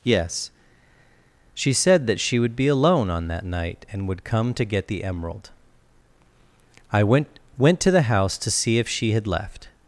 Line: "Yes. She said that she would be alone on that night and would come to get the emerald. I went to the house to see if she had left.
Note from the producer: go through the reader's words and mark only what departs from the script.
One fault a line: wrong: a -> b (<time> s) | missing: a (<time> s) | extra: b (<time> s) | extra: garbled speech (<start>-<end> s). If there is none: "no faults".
extra: went (7.6 s)